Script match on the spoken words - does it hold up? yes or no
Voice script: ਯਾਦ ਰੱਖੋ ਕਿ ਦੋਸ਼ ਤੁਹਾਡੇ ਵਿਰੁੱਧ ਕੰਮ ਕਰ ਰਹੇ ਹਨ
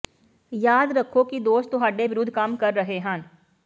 yes